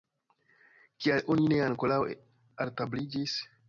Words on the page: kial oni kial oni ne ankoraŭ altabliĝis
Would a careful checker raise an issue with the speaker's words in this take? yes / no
yes